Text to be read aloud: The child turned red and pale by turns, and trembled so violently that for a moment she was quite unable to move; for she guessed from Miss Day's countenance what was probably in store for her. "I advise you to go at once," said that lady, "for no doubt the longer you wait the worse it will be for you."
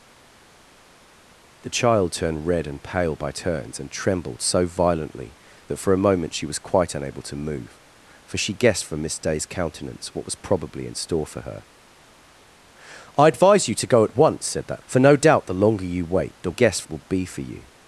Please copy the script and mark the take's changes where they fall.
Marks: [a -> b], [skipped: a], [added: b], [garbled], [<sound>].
The child turned red and pale by turns, and trembled so violently that for a moment she was quite unable to move; for she guessed from Miss Day's countenance what was probably in store for her. "I advise you to go at once," said that [skipped: lady,] "for no doubt the longer you wait the [worse -> guessed] it will be for you."